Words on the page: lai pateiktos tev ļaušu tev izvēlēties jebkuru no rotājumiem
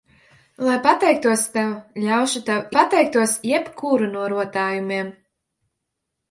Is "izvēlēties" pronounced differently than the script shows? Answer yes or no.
yes